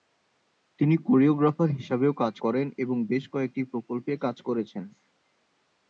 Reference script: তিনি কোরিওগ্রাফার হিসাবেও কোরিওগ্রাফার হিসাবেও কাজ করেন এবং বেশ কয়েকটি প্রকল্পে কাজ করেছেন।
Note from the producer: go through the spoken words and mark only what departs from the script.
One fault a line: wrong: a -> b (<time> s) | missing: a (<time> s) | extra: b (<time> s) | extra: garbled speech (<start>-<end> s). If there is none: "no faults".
missing: কোরিওগ্রাফার হিসাবেও (2.1 s)